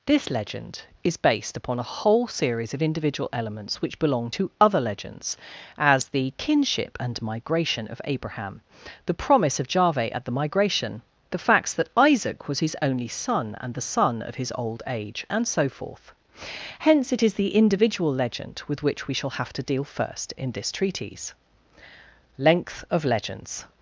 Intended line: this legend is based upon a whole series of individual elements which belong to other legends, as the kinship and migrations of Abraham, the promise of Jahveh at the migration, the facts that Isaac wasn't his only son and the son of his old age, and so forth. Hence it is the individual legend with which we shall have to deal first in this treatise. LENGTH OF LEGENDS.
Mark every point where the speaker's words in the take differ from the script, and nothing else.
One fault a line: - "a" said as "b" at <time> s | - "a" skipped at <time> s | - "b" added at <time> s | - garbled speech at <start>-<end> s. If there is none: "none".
- "migrations" said as "migration" at 7.2 s
- "wasn't" said as "was" at 12.5 s